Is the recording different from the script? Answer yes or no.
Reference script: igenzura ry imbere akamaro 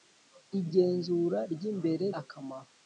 no